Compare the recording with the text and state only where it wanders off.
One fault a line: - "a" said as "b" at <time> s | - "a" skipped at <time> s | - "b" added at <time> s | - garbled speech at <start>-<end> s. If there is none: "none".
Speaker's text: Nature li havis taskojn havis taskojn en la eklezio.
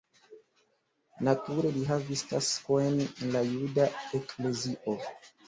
- "havis taskojn" skipped at 3.0 s
- "juda" added at 3.5 s